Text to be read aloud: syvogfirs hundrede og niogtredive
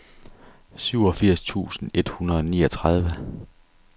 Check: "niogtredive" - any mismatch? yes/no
no